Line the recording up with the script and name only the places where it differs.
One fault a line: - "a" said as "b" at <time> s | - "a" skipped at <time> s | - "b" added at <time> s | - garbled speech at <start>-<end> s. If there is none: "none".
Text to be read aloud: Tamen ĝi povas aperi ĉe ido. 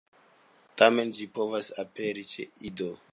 none